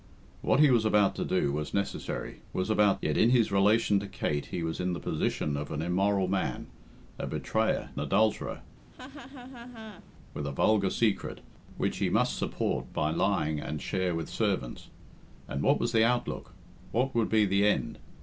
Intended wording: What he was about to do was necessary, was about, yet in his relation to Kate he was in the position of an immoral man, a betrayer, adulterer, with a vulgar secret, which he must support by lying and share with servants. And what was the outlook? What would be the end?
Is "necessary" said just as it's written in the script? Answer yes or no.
yes